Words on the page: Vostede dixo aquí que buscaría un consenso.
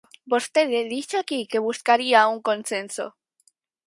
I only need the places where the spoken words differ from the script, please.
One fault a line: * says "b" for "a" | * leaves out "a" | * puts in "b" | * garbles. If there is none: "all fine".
all fine